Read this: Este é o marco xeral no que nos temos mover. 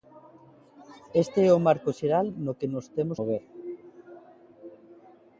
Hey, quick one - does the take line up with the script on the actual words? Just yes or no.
yes